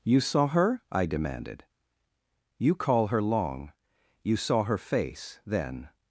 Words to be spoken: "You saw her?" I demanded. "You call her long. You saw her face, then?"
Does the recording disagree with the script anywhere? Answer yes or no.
no